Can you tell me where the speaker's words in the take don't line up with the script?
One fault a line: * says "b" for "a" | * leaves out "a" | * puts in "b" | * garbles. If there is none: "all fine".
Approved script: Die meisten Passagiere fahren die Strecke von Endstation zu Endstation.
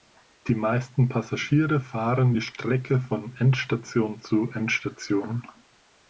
all fine